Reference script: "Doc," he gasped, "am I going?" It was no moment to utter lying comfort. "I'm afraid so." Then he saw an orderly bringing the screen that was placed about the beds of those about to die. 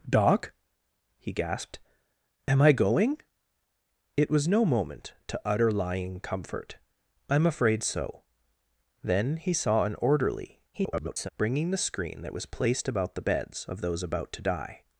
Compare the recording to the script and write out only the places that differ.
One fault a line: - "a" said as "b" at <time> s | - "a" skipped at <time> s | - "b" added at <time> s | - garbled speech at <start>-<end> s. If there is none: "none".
- garbled speech at 10.7-11.3 s